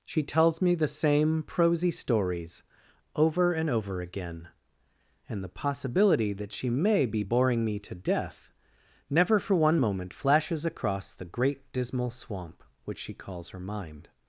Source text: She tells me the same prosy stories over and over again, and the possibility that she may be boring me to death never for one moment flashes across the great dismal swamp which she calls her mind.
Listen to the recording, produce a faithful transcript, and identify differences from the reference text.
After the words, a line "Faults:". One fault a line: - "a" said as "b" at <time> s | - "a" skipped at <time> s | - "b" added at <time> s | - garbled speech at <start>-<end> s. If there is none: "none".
She tells me the same prosy stories over and over again, and the possibility that she may be boring me to death never for one moment flashes across the great dismal swamp which she calls her mind.
Faults:
none